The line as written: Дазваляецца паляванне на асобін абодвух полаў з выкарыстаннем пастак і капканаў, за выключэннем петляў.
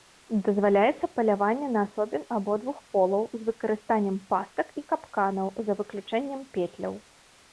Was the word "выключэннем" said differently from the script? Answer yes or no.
no